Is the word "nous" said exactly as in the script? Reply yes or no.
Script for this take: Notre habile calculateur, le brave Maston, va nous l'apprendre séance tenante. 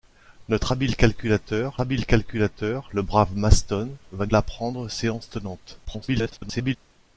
no